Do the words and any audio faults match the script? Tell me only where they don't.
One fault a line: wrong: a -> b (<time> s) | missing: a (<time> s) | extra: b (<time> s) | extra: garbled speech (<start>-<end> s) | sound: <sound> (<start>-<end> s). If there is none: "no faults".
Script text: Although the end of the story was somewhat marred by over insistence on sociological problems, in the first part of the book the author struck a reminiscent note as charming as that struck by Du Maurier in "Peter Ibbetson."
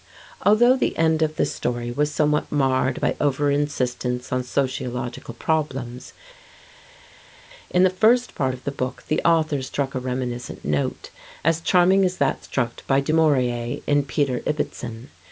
no faults